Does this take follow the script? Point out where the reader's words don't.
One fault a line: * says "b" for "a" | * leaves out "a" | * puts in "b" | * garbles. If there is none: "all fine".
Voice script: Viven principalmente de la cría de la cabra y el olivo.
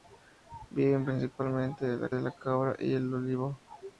* leaves out "cría"